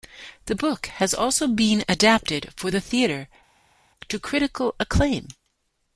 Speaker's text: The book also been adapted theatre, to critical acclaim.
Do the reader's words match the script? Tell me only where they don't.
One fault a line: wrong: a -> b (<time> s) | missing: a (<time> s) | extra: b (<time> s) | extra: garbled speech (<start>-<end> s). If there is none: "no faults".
extra: has (0.9 s)
extra: for the (2.6 s)